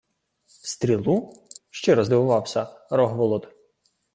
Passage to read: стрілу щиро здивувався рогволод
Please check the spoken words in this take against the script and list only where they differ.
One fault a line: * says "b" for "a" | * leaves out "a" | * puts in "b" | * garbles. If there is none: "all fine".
all fine